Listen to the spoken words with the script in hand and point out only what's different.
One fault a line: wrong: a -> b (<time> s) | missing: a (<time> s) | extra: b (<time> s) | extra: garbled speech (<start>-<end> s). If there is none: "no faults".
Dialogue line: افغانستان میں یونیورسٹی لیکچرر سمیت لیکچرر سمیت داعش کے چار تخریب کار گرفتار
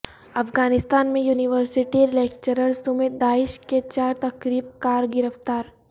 missing: لیکچرر سمیت (3.2 s)